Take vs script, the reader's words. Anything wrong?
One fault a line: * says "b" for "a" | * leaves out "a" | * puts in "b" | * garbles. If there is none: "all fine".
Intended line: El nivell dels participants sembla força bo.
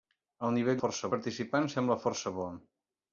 * says "força" for "dels"